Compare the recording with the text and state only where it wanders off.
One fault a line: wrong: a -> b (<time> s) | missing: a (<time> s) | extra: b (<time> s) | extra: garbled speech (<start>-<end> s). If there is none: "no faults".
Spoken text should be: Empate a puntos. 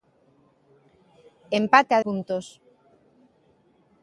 no faults